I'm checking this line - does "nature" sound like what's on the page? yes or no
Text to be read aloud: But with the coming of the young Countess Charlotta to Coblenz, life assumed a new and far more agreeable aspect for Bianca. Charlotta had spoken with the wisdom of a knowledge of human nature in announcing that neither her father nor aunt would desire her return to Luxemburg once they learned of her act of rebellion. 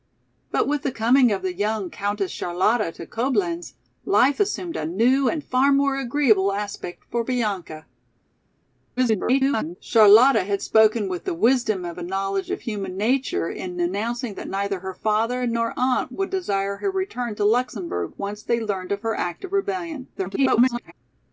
yes